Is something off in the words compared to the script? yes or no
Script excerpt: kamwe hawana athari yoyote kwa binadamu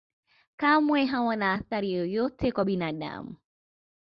no